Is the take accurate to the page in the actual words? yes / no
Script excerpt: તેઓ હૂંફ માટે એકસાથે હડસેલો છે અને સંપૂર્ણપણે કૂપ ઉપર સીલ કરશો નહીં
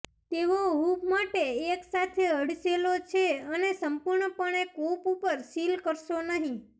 yes